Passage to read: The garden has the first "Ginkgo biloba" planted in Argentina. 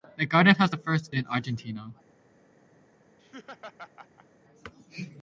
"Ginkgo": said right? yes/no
no